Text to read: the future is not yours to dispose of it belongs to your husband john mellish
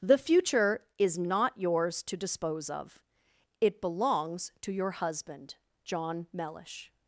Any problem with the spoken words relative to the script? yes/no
no